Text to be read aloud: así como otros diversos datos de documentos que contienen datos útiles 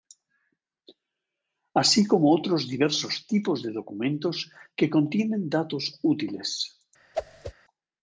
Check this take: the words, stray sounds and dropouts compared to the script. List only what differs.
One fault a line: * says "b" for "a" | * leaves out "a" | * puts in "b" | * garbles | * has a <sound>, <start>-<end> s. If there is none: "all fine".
* says "tipos" for "datos"
* has a whoosh, 7.1-7.5 s